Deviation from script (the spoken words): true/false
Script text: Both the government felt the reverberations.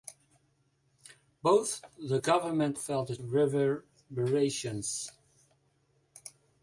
false